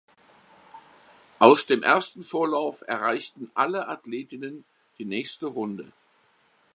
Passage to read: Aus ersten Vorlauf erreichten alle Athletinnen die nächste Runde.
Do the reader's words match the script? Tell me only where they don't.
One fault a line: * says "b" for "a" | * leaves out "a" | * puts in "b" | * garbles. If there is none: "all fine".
* puts in "dem"